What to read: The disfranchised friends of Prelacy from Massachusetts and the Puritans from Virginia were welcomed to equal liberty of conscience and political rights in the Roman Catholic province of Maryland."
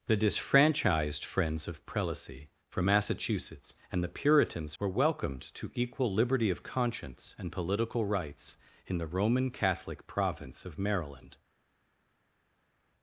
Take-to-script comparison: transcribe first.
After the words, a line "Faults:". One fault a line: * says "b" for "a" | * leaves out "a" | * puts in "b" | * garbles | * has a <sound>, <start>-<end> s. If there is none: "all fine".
The disfranchised friends of Prelacy from Massachusetts and the Puritans were welcomed to equal liberty of conscience and political rights in the Roman Catholic province of Maryland."
Faults:
* leaves out "from Virginia"